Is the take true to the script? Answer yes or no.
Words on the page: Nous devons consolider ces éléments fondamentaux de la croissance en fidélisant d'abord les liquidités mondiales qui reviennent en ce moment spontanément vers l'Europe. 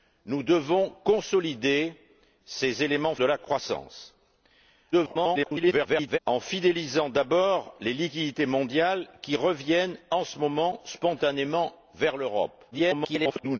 no